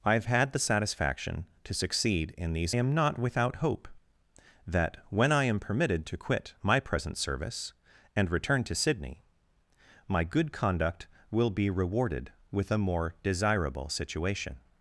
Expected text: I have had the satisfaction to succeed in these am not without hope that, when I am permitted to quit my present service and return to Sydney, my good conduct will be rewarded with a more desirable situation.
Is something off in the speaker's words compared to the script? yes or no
no